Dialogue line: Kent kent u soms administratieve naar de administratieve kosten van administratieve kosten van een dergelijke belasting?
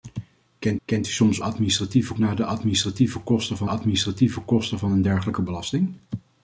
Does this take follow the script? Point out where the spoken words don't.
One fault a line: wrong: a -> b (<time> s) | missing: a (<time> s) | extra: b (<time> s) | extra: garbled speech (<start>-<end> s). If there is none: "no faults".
no faults